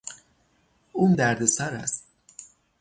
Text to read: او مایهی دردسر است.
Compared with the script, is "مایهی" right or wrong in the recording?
wrong